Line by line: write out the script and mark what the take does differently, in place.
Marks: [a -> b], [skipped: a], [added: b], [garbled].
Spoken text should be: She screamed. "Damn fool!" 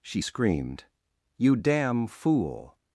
She screamed. [added: You] "Damn fool!"